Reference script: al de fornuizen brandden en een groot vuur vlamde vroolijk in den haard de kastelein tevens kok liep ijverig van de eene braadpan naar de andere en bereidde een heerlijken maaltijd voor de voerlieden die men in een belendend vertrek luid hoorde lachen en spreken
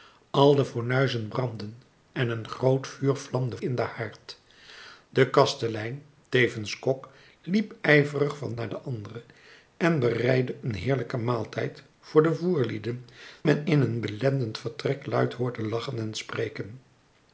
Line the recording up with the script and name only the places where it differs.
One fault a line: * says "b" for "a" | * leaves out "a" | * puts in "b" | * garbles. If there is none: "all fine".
* leaves out "vroolijk"
* leaves out "de eene braadpan"
* leaves out "die"